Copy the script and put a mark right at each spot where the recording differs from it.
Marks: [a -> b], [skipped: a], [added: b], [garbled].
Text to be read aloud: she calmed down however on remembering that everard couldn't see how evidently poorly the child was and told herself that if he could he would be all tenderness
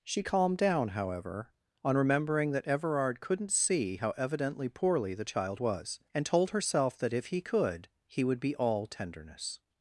she calmed down however on remembering that everard couldn't see how evidently poorly the child was and told herself that if he could he would be all tenderness